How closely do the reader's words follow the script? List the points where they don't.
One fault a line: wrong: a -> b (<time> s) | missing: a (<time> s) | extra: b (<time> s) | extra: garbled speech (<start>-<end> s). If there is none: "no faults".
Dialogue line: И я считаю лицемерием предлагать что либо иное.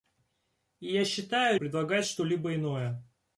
missing: лицемерием (1.6 s)